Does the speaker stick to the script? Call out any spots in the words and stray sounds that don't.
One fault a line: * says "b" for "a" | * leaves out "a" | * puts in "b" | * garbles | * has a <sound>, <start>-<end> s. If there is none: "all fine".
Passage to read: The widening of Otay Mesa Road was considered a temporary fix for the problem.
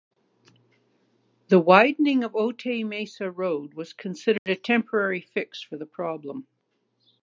* has a dropout, 4.4-4.5 s